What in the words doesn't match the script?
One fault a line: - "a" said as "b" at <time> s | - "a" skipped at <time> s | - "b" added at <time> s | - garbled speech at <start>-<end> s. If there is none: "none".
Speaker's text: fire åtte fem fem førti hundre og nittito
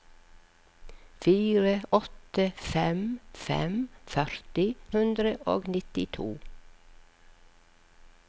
none